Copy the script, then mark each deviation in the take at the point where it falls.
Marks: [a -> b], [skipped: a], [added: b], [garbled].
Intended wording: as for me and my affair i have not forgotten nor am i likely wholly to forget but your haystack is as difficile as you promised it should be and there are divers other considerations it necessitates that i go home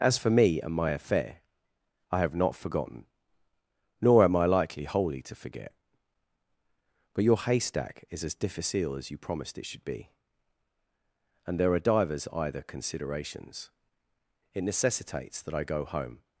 as for me and my affair i have not forgotten nor am i likely wholly to forget but your haystack is as difficile as you promised it should be and there are divers [other -> either] considerations it necessitates that i go home